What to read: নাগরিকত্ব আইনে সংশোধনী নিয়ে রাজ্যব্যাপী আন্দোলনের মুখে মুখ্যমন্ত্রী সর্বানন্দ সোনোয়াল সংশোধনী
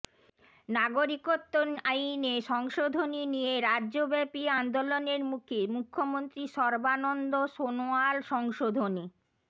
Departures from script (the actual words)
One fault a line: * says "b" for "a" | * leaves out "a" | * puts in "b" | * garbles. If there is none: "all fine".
all fine